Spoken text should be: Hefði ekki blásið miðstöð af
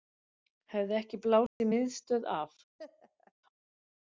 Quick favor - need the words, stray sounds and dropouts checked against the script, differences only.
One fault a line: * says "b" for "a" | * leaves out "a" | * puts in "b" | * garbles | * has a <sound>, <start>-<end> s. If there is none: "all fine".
* has a dropout, 1.5-1.6 s
* has a laugh, 2.8-3.3 s